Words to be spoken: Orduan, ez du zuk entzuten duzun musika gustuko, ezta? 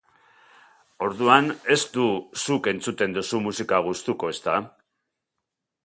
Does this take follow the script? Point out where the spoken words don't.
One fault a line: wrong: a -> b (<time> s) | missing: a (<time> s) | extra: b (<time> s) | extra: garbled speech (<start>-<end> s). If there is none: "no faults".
no faults